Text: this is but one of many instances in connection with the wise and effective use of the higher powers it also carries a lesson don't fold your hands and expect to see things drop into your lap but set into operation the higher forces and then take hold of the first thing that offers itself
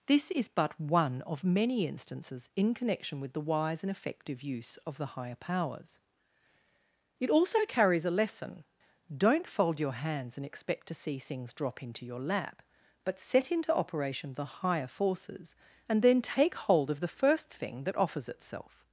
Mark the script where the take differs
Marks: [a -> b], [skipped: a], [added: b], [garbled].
this is but one of many instances in connection with the wise and effective use of the higher powers it also carries a lesson don't fold your hands and expect to see things drop into your lap but set into operation the higher forces and then take hold of the first thing that offers itself